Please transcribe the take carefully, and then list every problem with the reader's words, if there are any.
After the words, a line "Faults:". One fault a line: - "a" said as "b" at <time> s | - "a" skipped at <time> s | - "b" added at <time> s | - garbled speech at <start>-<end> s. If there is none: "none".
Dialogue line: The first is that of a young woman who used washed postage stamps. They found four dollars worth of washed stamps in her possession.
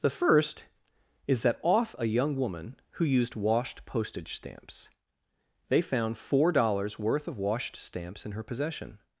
The first is that off a young woman who used washed postage stamps. They found four dollars worth of washed stamps in her possession.
Faults:
- "of" said as "off" at 1.6 s